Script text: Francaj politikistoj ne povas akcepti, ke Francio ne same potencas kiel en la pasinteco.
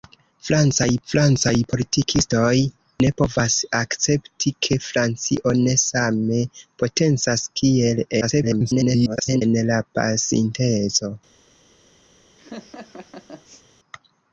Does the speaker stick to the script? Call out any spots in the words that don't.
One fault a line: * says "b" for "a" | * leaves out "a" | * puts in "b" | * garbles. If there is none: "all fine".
* puts in "francaj"
* garbles